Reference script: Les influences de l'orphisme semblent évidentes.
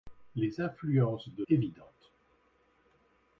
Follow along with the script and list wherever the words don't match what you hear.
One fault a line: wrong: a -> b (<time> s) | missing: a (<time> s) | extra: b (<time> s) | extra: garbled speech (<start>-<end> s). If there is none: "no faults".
missing: l'orphisme semblent (1.4 s)